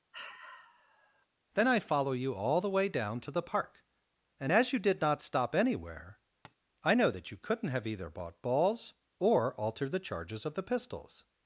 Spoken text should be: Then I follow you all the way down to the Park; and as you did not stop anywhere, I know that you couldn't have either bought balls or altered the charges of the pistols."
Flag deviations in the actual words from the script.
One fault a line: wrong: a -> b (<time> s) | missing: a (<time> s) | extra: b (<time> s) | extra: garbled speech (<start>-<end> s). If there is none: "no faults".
no faults